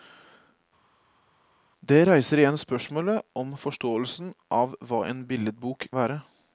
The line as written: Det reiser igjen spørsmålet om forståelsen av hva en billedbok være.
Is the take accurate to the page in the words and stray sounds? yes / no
yes